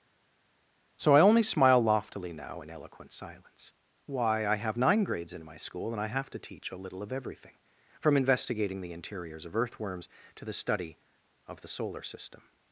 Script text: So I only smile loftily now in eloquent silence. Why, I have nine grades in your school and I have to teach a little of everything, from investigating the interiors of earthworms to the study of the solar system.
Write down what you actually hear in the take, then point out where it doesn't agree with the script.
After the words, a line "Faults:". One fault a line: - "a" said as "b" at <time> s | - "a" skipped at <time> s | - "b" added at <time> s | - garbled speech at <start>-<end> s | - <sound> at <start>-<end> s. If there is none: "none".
So I only smile loftily now in eloquent silence. Why, I have nine grades in my school and I have to teach a little of everything, from investigating the interiors of earthworms to the study of the solar system.
Faults:
- "your" said as "my" at 5.4 s